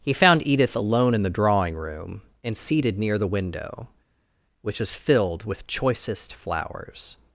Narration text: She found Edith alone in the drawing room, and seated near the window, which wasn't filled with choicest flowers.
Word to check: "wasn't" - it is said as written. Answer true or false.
false